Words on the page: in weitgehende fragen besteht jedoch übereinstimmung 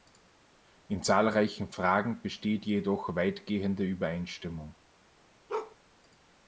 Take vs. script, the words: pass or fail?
fail